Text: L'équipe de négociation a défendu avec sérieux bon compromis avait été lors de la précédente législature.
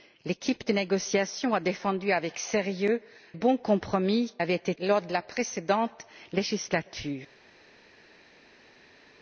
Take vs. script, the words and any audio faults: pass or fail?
pass